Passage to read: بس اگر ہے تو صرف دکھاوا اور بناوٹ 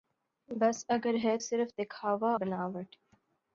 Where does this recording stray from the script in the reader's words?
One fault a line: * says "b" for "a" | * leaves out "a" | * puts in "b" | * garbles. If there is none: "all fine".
* leaves out "تو"
* leaves out "اور"